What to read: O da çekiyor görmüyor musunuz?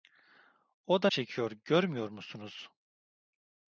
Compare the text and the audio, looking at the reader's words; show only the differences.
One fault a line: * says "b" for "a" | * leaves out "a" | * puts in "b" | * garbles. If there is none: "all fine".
all fine